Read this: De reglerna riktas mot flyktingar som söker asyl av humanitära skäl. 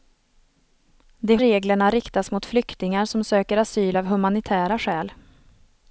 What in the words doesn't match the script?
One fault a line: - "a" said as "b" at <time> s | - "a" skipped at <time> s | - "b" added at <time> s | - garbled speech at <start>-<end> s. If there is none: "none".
none